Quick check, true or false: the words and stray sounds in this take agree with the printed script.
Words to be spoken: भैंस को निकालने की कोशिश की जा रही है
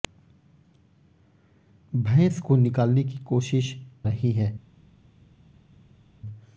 false